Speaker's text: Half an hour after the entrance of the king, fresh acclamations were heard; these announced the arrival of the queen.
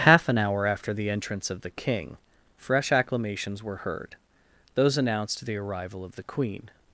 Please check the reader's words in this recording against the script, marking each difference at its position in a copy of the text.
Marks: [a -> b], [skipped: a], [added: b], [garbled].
Half an hour after the entrance of the king, fresh acclamations were heard; [these -> those] announced the arrival of the queen.